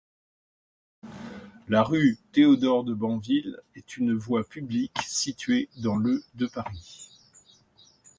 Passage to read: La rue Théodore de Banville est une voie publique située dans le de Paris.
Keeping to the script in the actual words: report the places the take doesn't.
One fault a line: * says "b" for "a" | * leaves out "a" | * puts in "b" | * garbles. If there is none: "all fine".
all fine